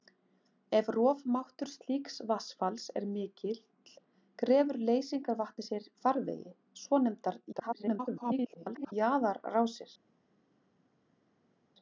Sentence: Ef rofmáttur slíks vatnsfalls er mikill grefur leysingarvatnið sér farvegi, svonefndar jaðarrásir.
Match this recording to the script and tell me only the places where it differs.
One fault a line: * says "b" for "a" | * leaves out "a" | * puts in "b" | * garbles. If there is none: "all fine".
* garbles